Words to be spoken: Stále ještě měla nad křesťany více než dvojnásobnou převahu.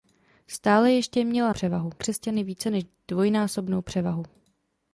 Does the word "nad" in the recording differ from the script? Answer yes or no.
yes